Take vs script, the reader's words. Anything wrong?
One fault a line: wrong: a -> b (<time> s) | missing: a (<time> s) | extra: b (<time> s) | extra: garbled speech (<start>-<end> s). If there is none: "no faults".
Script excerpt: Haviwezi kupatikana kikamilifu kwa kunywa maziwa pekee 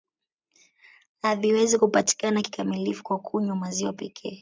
no faults